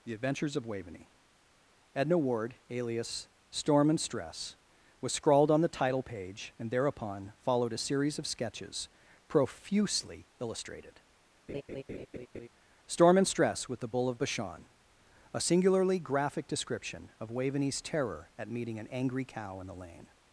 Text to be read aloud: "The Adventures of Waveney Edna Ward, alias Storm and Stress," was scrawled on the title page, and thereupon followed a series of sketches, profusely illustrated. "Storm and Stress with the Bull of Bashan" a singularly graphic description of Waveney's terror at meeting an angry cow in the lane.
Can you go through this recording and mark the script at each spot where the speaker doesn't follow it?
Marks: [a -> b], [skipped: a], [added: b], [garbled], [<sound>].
"The Adventures of Waveney Edna Ward, alias Storm and Stress," was scrawled on the title page, and thereupon followed a series of sketches, profusely illustrated. [laugh] "Storm and Stress with the Bull of Bashan" a singularly graphic description of Waveney's terror at meeting an angry cow in the lane.